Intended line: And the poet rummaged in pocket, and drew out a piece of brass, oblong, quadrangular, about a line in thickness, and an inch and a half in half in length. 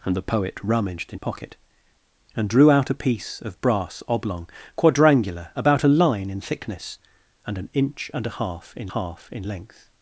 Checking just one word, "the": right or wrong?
right